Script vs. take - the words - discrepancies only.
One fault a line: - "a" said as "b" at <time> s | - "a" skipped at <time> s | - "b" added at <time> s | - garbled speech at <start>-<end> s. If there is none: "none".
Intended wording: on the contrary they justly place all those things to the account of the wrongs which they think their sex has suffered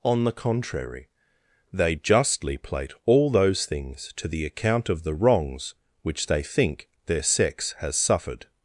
- "place" said as "plate" at 2.5 s